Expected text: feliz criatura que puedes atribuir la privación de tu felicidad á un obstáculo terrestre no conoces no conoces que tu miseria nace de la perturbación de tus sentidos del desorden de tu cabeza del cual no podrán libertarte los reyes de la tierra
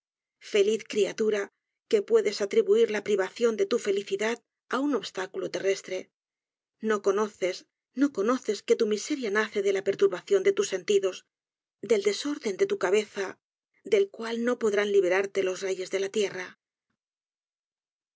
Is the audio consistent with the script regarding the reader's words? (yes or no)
yes